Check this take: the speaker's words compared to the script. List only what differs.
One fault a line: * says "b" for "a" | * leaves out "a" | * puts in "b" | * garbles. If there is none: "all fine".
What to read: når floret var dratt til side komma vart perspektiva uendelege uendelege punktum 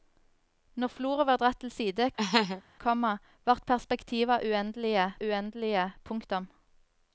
all fine